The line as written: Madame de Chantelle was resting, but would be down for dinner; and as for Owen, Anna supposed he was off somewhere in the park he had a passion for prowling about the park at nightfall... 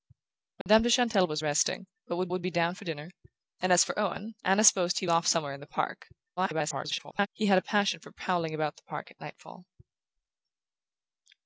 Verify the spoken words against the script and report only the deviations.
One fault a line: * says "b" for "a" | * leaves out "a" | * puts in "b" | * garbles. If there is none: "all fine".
* puts in "would"
* leaves out "was"
* garbles